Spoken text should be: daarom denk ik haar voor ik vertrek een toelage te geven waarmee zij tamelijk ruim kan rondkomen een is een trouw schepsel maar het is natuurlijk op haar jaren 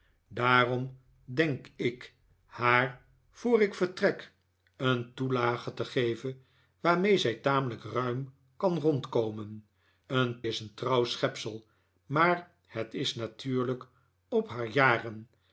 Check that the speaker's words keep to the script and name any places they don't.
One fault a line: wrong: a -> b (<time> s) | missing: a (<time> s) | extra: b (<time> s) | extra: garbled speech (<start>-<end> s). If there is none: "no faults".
no faults